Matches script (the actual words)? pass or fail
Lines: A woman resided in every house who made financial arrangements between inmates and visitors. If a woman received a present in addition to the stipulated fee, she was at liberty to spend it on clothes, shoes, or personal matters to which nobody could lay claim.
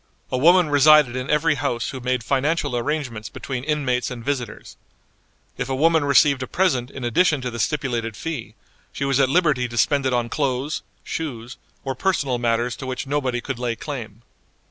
pass